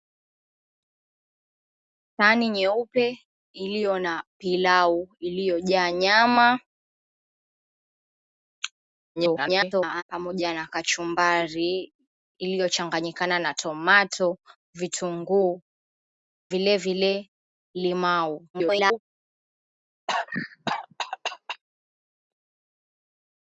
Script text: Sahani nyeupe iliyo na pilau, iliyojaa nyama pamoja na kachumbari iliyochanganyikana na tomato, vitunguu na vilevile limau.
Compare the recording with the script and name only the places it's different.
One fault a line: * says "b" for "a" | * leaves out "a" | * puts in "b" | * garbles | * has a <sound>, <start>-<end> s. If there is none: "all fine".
* garbles
* leaves out "na"
* garbles
* has a cough, 20.1-21.6 s